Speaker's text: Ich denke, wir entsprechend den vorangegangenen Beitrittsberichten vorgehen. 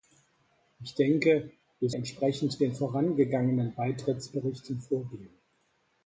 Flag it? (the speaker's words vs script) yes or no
no